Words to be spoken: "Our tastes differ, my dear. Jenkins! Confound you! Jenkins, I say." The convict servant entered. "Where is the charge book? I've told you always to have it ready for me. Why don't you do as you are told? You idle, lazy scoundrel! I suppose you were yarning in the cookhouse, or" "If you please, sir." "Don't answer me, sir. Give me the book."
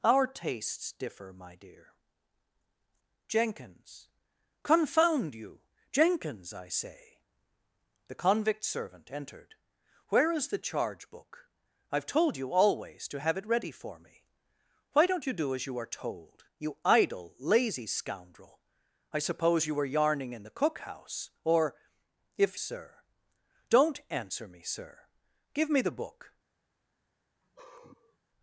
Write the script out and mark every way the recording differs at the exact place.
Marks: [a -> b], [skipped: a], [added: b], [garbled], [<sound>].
"Our tastes differ, my dear. Jenkins! Confound you! Jenkins, I say." The convict servant entered. "Where is the charge book? I've told you always to have it ready for me. Why don't you do as you are told? You idle, lazy scoundrel! I suppose you were yarning in the cookhouse, or" "If [skipped: you please,] sir." "Don't answer me, sir. Give me the book." [sigh]